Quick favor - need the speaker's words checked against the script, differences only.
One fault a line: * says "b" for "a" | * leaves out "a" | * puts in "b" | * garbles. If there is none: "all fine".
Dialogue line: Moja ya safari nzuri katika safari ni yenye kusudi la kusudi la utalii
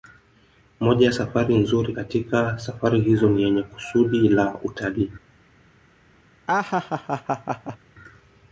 * puts in "hizo"
* leaves out "kusudi la"